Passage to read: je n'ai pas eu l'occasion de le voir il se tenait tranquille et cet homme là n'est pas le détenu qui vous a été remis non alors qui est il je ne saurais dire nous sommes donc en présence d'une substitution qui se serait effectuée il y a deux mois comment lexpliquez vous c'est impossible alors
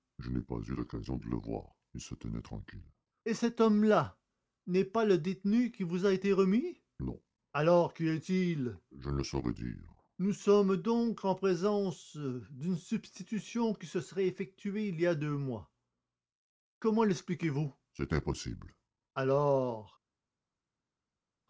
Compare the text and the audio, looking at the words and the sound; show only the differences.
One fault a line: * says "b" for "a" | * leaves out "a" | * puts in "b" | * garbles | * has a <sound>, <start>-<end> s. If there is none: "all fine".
all fine